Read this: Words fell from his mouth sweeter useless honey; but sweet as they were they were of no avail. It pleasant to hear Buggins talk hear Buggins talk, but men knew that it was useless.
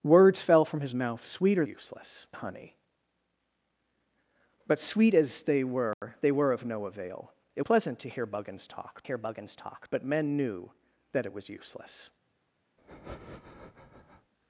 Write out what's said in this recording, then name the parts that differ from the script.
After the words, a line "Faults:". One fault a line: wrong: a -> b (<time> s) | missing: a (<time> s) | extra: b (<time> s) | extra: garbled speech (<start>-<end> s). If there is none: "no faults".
Words fell from his mouth sweeter useless honey; but sweet as they were they were of no avail. It pleasant to hear Buggins talk hear Buggins talk, but men knew that it was useless.
Faults:
no faults